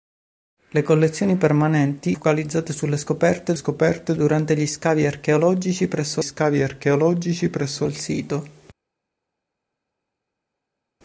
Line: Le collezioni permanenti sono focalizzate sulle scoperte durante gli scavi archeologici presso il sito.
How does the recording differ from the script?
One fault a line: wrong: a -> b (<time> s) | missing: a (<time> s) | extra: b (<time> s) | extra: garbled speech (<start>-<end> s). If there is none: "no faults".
missing: sono (2.2 s)
extra: scoperte (3.5 s)
extra: scavi archeologici presso (6.2 s)